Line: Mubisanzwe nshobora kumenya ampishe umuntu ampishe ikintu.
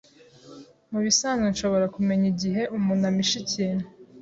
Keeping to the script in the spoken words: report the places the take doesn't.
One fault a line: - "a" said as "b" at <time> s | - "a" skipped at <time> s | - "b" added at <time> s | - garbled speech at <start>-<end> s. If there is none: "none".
- "ampishe" said as "igihe" at 2.3 s